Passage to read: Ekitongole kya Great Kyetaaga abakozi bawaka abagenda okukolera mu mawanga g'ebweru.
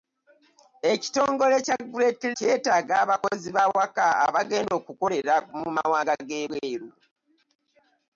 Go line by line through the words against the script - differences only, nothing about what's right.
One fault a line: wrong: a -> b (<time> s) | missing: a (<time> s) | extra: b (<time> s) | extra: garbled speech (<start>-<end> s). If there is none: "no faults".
no faults